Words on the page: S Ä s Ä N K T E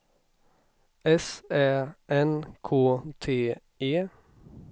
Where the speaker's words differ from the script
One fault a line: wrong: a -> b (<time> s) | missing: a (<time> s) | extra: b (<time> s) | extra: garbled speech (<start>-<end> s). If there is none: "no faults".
missing: s Ä (1.9 s)